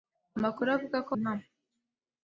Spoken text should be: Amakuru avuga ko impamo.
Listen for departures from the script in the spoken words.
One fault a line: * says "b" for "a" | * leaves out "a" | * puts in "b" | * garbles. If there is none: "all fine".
all fine